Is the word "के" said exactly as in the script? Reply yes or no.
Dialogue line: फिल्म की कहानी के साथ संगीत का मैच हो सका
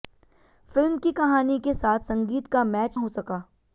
yes